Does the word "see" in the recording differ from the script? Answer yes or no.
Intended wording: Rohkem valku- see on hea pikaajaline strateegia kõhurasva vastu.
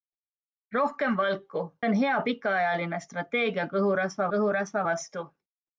yes